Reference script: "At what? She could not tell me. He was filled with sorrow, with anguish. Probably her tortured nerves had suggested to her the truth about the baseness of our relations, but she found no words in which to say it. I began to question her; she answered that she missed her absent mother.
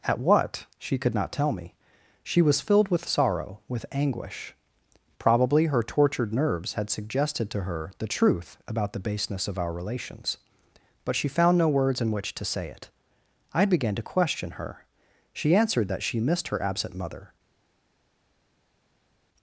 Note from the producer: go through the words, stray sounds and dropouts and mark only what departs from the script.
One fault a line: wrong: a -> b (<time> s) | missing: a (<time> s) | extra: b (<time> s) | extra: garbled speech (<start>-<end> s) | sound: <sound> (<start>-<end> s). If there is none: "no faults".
wrong: He -> She (2.2 s)